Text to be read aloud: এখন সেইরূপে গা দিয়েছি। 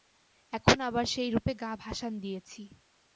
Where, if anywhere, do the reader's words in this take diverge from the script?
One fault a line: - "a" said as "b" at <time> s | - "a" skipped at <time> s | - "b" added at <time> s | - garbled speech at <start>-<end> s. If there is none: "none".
- "আবার" added at 0.8 s
- "ভাসান" added at 1.8 s